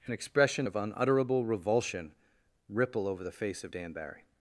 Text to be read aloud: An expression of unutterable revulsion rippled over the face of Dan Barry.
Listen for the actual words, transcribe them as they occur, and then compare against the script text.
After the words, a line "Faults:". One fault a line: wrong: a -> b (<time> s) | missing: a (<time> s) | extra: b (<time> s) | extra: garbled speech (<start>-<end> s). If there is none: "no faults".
An expression of unutterable revulsion ripple over the face of Dan Barry.
Faults:
wrong: rippled -> ripple (2.7 s)